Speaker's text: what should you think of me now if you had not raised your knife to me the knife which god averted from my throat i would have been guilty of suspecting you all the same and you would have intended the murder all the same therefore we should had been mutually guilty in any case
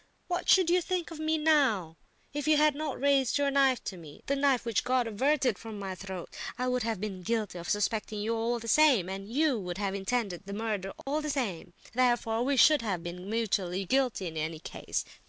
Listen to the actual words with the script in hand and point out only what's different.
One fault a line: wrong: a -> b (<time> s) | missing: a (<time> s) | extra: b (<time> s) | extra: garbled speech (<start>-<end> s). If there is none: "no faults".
wrong: had -> have (12.8 s)